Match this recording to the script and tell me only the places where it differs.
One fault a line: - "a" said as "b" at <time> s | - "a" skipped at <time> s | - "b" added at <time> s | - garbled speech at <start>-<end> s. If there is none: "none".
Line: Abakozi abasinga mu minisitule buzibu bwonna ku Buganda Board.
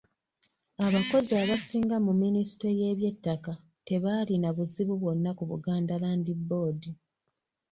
- "y'eby'ettaka tebaalina" added at 2.8 s
- "Land" added at 6.0 s